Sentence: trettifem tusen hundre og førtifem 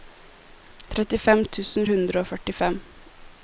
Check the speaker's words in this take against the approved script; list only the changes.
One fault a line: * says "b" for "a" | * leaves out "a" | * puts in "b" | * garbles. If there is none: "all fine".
all fine